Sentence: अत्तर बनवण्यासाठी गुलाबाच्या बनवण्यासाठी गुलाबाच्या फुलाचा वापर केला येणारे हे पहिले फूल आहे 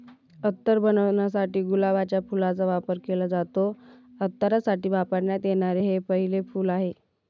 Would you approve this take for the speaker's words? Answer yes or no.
no